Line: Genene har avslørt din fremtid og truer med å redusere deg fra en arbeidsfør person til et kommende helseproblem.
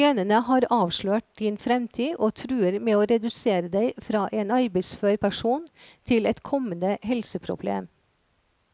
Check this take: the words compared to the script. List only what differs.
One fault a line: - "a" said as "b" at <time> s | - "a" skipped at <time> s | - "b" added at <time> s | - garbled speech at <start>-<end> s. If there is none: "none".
none